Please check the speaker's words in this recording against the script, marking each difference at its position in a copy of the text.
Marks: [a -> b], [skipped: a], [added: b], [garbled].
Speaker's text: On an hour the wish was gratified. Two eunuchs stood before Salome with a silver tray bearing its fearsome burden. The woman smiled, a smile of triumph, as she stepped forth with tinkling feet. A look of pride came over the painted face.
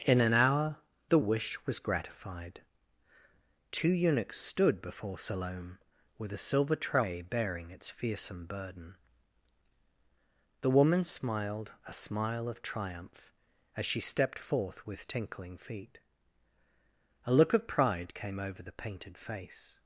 [On -> In] an hour the wish was gratified. Two eunuchs stood before Salome with a silver tray bearing its fearsome burden. The woman smiled, a smile of triumph, as she stepped forth with tinkling feet. A look of pride came over the painted face.